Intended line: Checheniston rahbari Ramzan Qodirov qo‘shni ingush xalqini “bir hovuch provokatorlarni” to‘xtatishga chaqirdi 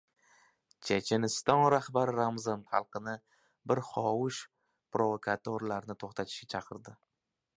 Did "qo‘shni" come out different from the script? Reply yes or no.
yes